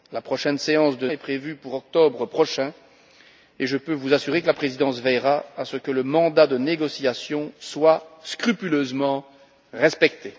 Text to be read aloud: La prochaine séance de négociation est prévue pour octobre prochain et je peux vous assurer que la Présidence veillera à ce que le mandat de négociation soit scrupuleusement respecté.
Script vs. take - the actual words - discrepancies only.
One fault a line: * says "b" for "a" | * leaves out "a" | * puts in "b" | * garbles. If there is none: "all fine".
* leaves out "négociation"